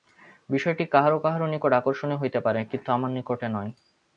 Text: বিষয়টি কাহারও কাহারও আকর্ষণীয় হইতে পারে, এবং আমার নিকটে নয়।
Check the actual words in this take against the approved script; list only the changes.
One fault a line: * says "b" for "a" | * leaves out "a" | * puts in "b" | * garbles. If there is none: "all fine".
* puts in "নিকট"
* says "কিন্তু" for "এবং"